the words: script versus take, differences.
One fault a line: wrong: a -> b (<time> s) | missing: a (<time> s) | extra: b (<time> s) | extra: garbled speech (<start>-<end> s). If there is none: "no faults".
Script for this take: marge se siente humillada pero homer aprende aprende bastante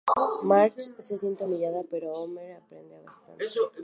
missing: aprende (3.0 s)